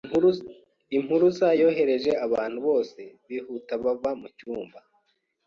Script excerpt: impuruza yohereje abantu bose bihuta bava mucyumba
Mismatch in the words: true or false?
false